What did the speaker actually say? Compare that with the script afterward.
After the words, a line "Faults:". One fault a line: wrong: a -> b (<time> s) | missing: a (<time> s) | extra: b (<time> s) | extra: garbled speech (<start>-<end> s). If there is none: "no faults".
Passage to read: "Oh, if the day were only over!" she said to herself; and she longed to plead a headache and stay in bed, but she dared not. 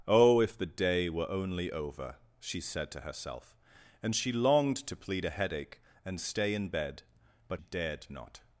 "Oh, if the day were only over!" she said to herself; and she longed to plead a headache and stay in bed, but dared not.
Faults:
missing: she (7.6 s)